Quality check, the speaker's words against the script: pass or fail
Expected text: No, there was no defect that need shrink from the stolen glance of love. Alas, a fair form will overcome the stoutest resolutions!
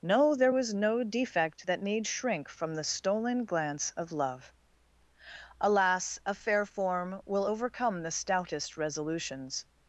pass